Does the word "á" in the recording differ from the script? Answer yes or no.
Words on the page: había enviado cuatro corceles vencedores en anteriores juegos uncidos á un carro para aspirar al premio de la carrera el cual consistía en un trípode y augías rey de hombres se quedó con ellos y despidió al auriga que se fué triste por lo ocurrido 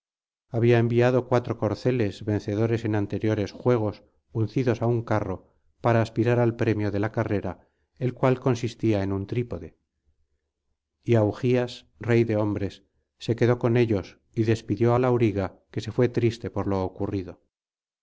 no